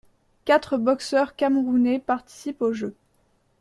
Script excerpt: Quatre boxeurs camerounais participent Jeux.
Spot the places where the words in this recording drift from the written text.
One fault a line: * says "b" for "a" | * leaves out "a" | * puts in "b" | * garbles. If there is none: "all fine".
* puts in "aux"